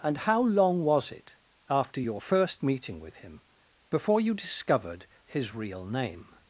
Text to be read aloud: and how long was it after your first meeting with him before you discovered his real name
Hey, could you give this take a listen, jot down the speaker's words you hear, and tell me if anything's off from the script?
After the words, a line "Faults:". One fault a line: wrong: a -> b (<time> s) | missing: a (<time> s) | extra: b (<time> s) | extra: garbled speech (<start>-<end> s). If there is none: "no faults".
and how long was it after your first meeting with him before you discovered his real name
Faults:
no faults